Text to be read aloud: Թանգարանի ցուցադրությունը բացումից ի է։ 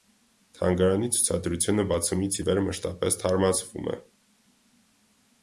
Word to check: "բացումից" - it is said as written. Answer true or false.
true